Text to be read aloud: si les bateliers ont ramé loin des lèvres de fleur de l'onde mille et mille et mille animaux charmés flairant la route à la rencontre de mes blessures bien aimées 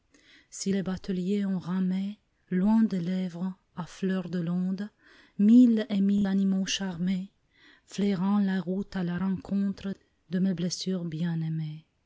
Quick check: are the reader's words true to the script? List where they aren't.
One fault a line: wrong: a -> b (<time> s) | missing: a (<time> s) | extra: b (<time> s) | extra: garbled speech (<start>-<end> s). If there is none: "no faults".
wrong: de -> à (3.7 s)
missing: et mille (6.3 s)